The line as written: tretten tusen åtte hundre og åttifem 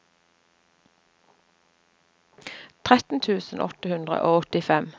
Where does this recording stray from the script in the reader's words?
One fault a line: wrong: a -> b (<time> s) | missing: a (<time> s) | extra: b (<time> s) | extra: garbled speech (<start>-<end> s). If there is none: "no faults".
no faults